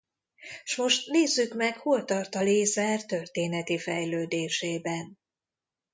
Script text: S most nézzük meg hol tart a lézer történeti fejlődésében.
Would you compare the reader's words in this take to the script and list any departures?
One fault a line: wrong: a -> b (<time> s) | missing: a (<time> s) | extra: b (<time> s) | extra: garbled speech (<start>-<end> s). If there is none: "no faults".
no faults